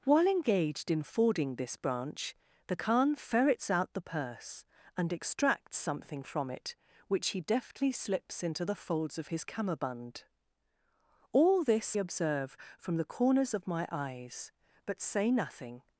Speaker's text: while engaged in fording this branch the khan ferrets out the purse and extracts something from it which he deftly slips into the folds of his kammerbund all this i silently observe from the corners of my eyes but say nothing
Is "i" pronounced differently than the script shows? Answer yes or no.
yes